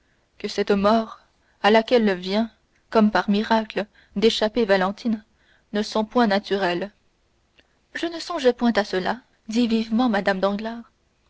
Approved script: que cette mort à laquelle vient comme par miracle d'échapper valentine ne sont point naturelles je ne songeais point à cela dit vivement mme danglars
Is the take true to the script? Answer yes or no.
yes